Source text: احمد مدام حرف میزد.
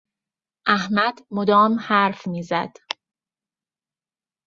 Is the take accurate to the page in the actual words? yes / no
yes